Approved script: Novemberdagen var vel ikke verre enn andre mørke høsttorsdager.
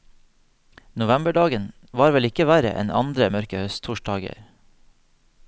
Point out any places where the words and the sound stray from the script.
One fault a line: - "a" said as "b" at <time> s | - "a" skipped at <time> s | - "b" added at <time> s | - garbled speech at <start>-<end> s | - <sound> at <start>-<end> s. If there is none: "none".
none